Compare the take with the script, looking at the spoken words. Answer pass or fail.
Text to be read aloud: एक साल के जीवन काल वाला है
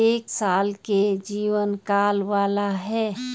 pass